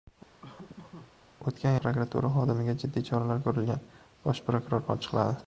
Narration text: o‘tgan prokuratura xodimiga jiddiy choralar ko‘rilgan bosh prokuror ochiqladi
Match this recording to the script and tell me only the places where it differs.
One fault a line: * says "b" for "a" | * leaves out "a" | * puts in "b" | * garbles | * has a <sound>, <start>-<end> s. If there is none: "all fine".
* has a laugh, 0.4-1.1 s